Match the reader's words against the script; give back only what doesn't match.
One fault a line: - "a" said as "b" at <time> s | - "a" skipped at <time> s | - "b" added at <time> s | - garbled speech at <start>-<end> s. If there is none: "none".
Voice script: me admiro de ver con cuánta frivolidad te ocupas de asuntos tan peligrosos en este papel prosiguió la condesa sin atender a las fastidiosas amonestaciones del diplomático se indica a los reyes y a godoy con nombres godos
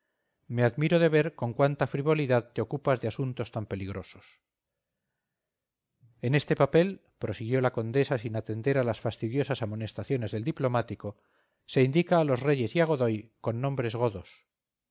none